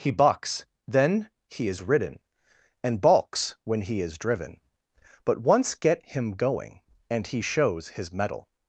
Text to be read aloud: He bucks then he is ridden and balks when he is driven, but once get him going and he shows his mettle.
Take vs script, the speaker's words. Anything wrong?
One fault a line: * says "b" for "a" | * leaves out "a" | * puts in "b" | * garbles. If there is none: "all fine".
all fine